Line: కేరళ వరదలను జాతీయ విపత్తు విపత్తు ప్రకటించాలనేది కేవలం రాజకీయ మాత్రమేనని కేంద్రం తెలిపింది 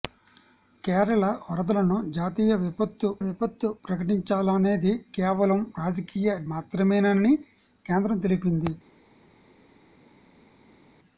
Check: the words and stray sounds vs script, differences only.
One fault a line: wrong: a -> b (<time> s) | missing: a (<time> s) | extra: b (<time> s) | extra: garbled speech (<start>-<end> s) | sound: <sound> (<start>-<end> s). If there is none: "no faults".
no faults